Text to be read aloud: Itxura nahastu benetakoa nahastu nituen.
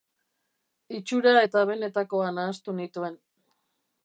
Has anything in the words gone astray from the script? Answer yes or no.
yes